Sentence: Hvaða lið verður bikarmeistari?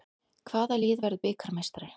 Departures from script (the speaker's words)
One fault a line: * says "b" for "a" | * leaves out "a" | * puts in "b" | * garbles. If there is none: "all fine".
all fine